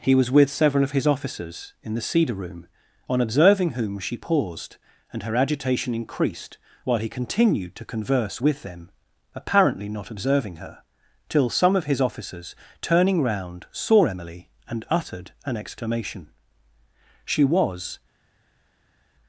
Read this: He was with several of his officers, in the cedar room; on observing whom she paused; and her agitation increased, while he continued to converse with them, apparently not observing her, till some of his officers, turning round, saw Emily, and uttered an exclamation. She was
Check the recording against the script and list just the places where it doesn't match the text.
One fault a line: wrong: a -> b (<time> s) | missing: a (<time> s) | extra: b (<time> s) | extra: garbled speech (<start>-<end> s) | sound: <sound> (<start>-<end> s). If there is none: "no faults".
no faults